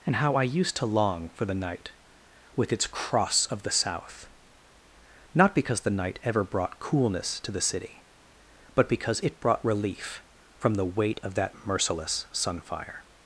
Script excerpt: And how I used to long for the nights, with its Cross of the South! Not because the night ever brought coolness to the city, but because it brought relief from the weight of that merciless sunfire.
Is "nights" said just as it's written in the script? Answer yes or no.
no